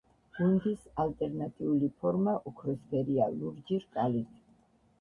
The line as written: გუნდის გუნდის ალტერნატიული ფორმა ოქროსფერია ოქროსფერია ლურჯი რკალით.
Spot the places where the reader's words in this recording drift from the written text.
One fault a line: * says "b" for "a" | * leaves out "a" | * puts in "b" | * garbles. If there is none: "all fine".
* leaves out "გუნდის"
* leaves out "ოქროსფერია"